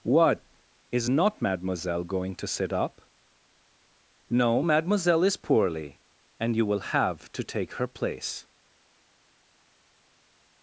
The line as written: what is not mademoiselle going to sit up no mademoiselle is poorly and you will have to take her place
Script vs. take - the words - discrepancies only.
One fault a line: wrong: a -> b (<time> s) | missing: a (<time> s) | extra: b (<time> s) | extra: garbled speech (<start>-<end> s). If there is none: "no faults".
no faults